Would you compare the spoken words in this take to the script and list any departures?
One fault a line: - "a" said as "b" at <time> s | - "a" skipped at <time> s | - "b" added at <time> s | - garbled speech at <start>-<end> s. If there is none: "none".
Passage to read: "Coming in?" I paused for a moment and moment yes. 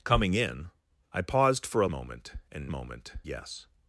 none